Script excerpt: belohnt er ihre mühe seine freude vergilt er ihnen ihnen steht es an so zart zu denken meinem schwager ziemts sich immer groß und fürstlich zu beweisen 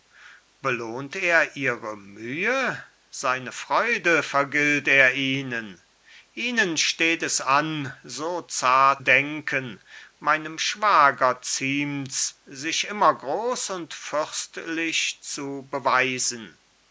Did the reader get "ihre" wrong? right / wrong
right